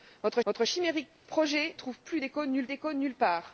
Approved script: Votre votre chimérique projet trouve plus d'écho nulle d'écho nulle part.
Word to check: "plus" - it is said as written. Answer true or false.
true